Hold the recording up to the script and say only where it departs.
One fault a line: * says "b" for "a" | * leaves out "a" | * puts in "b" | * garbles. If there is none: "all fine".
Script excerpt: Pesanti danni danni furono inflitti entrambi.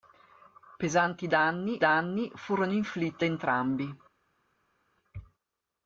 all fine